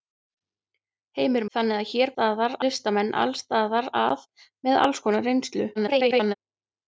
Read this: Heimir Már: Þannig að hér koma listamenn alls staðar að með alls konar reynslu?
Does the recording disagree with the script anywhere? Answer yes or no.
yes